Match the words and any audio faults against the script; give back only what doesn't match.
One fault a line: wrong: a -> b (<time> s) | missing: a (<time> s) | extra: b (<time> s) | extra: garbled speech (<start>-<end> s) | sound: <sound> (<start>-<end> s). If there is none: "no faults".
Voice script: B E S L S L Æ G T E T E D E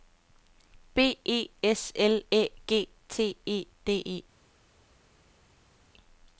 missing: S L (2.2 s)
missing: T E (3.7 s)